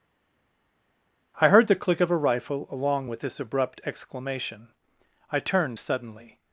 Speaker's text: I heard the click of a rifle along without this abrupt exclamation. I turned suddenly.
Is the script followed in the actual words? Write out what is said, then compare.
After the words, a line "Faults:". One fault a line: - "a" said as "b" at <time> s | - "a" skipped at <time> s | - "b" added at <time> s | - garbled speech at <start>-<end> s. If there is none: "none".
I heard the click of a rifle along with this abrupt exclamation. I turned suddenly.
Faults:
- "without" said as "with" at 3.1 s